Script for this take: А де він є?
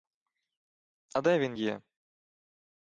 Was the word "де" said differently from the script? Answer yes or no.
no